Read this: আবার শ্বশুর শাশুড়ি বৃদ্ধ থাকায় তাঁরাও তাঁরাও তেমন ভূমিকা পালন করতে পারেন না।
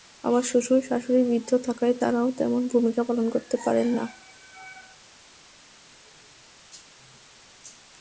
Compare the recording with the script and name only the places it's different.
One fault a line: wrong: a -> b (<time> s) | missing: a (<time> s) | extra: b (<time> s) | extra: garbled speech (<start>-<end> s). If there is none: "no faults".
missing: তাঁরাও (2.3 s)